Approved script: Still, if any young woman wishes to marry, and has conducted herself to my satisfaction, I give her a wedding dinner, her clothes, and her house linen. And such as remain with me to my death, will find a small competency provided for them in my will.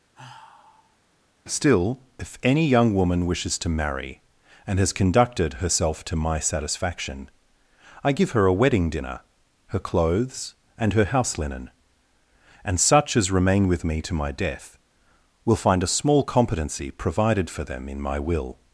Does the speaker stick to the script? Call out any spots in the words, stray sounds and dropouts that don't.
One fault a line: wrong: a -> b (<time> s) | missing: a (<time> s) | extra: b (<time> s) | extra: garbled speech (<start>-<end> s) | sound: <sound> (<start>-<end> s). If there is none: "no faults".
sound: sigh (0.1-1.0 s)